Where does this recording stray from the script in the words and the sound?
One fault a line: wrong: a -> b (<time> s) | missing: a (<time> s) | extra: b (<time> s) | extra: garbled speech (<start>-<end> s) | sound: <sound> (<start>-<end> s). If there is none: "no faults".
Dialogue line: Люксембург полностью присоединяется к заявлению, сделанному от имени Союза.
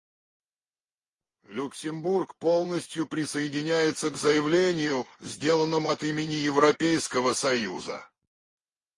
extra: Европейского (6.3 s)